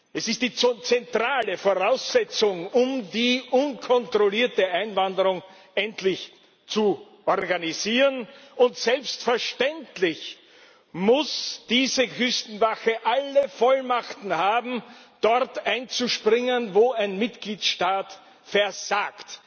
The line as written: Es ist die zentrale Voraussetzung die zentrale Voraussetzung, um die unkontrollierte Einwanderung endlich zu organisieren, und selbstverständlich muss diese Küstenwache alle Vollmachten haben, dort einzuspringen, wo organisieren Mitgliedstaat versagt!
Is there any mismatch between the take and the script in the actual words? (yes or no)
yes